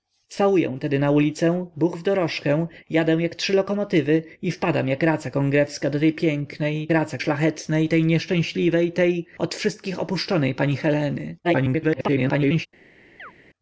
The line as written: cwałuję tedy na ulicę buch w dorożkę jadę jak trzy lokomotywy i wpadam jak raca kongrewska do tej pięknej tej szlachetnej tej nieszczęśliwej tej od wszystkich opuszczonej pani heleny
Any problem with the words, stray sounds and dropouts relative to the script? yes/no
yes